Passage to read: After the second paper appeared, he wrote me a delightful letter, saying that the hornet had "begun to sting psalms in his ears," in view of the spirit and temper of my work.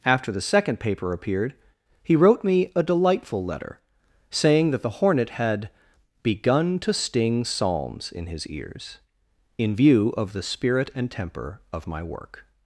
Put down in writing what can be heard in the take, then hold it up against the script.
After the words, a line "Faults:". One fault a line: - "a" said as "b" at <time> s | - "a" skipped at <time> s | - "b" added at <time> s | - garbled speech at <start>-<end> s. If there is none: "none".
After the second paper appeared, he wrote me a delightful letter, saying that the hornet had "begun to sting psalms in his ears," in view of the spirit and temper of my work.
Faults:
none